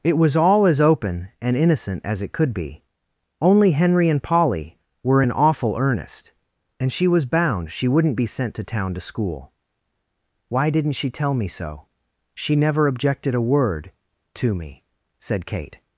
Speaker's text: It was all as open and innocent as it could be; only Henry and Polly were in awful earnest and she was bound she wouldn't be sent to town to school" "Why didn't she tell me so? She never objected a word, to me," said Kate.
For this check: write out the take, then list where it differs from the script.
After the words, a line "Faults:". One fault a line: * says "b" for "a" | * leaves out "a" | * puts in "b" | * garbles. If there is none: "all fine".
It was all as open and innocent as it could be; only Henry and Polly were in awful earnest and she was bound she wouldn't be sent to town to school" "Why didn't she tell me so? She never objected a word, to me," said Kate.
Faults:
all fine